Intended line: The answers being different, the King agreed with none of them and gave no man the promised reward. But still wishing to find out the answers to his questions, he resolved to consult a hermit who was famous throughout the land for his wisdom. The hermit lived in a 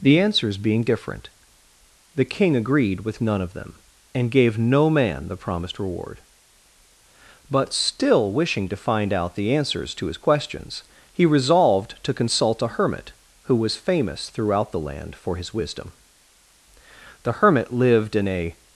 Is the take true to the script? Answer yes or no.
yes